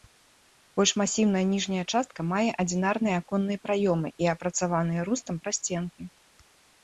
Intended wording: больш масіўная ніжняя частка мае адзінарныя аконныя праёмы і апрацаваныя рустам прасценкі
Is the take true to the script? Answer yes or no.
yes